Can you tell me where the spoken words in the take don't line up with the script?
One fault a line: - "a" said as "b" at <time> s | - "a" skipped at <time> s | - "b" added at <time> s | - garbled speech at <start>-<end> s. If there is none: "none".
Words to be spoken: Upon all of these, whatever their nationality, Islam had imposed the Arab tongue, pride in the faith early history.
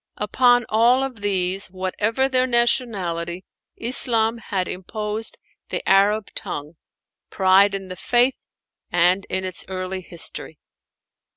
- "and in its" added at 8.9 s